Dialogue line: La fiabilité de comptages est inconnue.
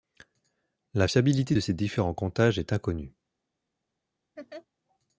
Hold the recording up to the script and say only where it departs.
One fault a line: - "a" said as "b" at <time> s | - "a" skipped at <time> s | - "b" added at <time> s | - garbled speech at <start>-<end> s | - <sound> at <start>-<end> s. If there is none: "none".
- "ces différents" added at 1.6 s
- laugh at 4.4-4.7 s